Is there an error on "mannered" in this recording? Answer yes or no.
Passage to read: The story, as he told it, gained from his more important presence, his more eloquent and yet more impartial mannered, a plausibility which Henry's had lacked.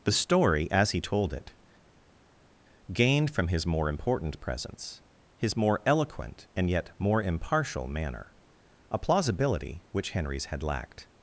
yes